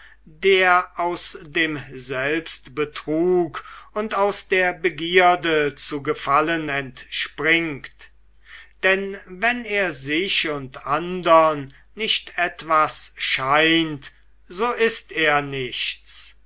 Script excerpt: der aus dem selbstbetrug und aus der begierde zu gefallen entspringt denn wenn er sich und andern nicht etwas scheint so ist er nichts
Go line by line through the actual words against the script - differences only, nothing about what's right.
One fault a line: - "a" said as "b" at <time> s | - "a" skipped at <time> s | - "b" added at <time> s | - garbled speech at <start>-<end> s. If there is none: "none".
none